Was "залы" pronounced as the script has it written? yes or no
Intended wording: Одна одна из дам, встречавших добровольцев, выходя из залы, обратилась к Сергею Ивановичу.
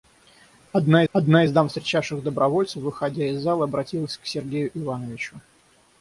yes